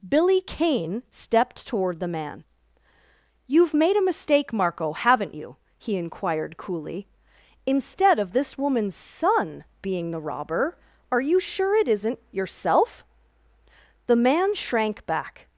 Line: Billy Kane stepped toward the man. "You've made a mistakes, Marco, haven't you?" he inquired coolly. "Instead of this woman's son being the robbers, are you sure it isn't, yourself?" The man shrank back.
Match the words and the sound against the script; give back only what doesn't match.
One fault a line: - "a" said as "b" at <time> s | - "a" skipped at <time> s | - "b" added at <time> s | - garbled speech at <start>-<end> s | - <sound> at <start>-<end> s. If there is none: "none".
- "mistakes" said as "mistake" at 4.0 s
- "robbers" said as "robber" at 10.2 s